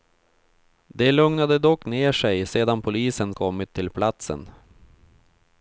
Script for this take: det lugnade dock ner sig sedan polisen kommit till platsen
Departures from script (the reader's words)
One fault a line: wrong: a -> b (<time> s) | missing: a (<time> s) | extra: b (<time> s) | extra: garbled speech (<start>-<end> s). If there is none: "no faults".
no faults